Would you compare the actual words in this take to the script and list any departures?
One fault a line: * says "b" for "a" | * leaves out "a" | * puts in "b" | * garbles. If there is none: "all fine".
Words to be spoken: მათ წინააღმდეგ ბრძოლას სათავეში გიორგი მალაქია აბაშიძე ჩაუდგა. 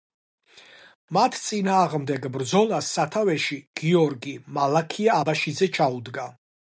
all fine